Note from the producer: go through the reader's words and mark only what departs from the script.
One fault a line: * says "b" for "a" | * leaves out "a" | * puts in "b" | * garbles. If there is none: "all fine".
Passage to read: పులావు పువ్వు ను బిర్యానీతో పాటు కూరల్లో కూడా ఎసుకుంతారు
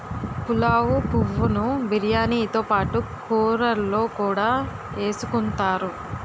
all fine